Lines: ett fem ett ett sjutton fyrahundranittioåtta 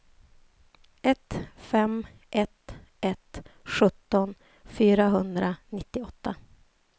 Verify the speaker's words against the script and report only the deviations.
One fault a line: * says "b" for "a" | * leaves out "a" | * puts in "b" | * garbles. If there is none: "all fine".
all fine